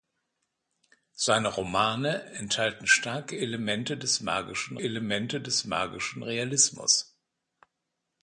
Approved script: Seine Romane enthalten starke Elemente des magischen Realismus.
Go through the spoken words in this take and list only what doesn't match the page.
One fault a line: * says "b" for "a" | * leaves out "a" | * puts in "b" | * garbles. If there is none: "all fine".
* puts in "Elemente des magischen"